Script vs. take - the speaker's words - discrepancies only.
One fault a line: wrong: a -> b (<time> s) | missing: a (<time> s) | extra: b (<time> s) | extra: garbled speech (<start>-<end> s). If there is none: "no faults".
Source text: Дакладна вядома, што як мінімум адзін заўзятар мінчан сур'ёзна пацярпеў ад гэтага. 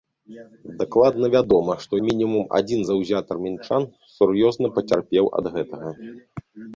missing: як (2.0 s)